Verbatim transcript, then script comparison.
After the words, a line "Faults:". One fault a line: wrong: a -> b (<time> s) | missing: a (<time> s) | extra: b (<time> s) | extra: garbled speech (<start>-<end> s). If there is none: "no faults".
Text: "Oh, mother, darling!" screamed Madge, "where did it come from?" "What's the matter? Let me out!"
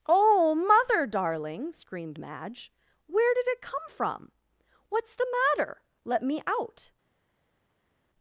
"Oh, mother, darling!" screamed Madge, "where did it come from?" "What's the matter? Let me out!"
Faults:
no faults